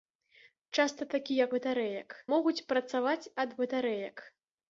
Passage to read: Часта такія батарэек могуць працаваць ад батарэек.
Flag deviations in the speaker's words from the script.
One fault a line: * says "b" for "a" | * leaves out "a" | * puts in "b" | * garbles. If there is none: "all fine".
all fine